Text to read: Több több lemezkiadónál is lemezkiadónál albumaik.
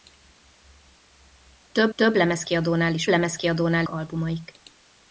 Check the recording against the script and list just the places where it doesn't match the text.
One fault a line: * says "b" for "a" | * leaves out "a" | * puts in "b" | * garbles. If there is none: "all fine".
all fine